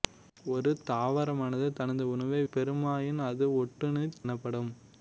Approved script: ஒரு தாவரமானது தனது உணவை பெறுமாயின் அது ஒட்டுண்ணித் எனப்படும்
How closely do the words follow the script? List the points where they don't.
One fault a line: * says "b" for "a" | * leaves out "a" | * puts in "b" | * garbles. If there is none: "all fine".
all fine